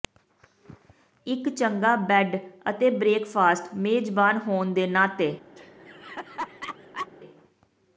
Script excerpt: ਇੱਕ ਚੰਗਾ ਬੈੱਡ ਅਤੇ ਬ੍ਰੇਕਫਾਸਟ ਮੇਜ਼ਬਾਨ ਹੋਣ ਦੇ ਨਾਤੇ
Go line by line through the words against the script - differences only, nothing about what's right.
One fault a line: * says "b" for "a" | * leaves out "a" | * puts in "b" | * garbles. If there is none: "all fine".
all fine